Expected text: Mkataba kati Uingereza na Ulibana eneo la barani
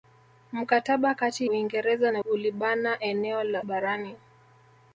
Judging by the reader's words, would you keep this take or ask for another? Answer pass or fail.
pass